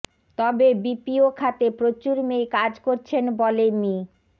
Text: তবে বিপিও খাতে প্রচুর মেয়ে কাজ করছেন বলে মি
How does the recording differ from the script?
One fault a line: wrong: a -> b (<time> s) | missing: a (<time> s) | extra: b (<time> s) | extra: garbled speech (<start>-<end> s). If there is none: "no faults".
no faults